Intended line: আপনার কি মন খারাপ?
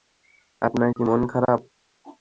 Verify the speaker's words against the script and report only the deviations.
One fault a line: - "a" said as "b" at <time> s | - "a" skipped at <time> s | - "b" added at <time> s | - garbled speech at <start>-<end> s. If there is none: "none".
none